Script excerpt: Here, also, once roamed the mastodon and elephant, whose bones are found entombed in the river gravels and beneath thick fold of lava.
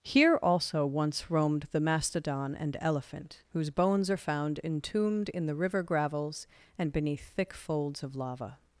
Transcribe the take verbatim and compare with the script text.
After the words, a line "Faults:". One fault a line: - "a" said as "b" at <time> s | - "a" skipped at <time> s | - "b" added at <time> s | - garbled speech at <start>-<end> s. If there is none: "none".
Here, also, once roamed the mastodon and elephant, whose bones are found entombed in the river gravels and beneath thick folds of lava.
Faults:
- "fold" said as "folds" at 7.5 s